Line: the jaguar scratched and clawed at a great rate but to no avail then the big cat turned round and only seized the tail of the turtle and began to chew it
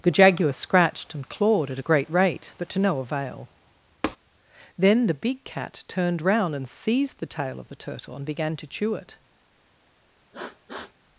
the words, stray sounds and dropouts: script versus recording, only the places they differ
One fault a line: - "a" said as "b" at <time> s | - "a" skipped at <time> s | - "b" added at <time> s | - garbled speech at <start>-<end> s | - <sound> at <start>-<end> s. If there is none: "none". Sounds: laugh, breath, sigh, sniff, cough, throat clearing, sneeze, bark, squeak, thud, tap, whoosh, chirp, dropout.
- tap at 4.0-4.2 s
- "only" skipped at 6.7 s
- sniff at 10.3-10.9 s